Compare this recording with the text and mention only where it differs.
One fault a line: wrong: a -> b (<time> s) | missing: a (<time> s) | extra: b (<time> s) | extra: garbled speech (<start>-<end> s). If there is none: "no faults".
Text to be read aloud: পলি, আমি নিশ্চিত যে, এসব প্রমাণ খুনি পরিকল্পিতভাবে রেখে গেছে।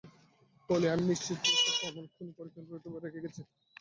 no faults